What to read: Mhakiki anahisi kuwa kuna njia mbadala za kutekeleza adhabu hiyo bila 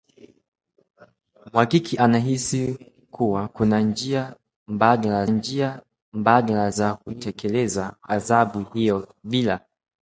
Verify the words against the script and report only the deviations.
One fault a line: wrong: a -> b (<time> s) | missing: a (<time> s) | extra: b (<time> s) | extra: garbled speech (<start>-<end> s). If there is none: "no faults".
extra: njia mbadala (5.3 s)